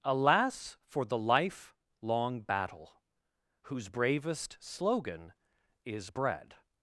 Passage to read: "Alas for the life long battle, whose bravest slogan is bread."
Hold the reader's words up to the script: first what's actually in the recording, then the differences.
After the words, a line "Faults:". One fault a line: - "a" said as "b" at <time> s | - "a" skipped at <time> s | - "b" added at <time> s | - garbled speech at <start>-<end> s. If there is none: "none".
"Alas for the life long battle, whose bravest slogan is bread."
Faults:
none